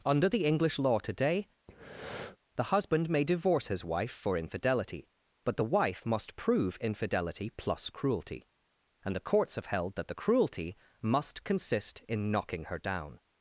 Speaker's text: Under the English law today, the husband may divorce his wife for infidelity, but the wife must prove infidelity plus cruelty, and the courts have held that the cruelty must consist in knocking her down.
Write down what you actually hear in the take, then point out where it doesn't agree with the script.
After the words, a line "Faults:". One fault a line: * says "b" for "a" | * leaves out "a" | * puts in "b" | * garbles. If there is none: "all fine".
Under the English law today, the husband may divorce his wife for infidelity, but the wife must prove infidelity plus cruelty, and the courts have held that the cruelty must consist in knocking her down.
Faults:
all fine